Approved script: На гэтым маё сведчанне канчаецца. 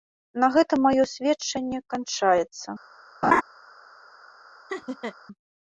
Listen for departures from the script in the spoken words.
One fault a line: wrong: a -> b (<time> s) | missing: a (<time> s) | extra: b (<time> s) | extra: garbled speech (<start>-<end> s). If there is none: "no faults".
no faults